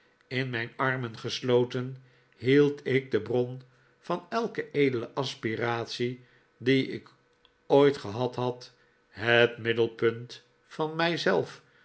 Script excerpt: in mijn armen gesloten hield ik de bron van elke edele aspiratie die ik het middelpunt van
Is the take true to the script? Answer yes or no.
no